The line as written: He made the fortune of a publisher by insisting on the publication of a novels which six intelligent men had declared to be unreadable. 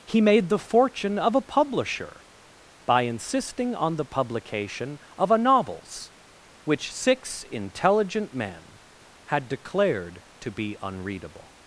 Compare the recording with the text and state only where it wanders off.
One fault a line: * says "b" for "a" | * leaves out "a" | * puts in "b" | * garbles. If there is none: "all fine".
all fine